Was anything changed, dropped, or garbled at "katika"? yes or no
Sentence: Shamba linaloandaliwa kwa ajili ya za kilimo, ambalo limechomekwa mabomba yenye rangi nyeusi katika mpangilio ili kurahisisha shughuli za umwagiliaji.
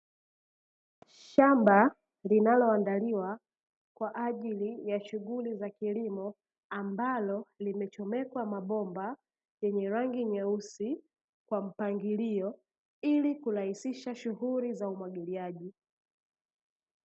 yes